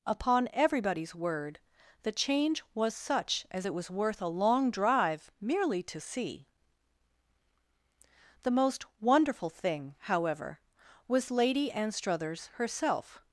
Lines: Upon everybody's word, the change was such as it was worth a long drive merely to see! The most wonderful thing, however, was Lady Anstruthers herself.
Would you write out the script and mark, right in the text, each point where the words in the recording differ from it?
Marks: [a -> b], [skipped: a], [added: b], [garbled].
Upon everybody's word, the change was such as it was worth a long drive merely to see! The most wonderful thing, however, was Lady Anstruthers herself.